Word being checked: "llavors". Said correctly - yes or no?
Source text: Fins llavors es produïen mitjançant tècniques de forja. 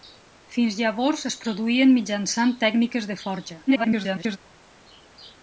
yes